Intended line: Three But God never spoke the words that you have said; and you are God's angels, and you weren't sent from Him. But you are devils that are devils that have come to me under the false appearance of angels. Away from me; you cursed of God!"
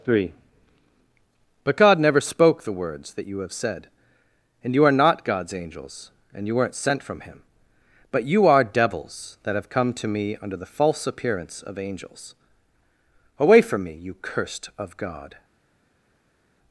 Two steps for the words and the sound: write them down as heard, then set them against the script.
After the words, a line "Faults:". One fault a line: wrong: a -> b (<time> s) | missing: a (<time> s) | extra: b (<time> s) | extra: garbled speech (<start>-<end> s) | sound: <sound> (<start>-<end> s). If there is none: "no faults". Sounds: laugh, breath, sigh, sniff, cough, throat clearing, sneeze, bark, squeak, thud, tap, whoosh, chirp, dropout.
Three But God never spoke the words that you have said; and you are not God's angels, and you weren't sent from Him. But you are devils that have come to me under the false appearance of angels. Away from me; you cursed of God!"
Faults:
extra: not (4.9 s)
missing: are devils that (9.6 s)